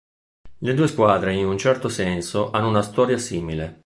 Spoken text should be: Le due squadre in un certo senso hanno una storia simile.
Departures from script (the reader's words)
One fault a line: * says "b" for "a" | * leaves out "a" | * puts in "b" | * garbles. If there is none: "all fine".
all fine